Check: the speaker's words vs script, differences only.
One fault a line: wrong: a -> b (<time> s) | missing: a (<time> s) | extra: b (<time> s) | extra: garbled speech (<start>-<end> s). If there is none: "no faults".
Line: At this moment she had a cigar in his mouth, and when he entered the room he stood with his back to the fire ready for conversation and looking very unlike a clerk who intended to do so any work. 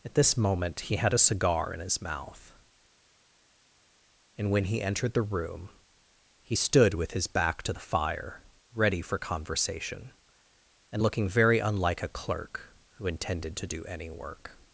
wrong: she -> he (0.8 s)
missing: so (13.8 s)